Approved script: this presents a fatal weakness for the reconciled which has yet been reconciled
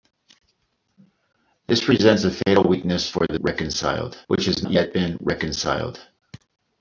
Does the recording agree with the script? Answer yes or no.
yes